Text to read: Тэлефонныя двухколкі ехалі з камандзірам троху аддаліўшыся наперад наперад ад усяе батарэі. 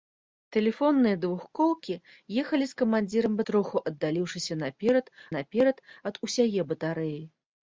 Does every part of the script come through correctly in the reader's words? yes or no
yes